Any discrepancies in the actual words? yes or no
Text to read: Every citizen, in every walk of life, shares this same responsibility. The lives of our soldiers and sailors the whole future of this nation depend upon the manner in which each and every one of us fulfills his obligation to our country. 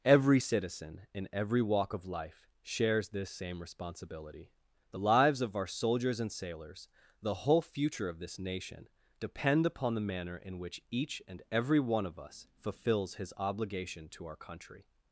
no